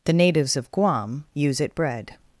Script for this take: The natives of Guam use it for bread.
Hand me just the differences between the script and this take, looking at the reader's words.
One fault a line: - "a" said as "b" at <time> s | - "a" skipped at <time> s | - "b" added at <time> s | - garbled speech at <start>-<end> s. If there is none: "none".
- "for" skipped at 1.8 s